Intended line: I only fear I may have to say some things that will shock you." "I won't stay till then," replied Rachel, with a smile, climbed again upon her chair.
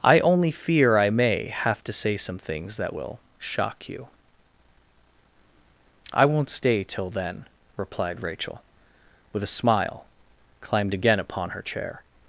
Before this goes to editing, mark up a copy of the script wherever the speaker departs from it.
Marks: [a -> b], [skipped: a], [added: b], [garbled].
I only fear I may have to say some things that will shock you." "I won't stay till then," replied Rachel, with a smile, climbed again upon her chair.